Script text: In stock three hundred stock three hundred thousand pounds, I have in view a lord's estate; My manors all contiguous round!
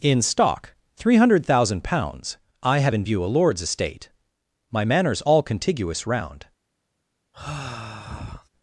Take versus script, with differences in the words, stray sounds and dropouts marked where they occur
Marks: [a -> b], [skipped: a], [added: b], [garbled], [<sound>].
In stock three hundred [skipped: stock three hundred] thousand pounds, I have in view a lord's estate; My manors all contiguous round! [sigh]